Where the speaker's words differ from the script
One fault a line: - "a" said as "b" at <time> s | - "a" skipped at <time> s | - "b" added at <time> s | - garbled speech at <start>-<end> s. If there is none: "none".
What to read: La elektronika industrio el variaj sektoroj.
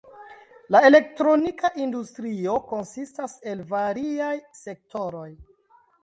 - "konsistas" added at 2.7 s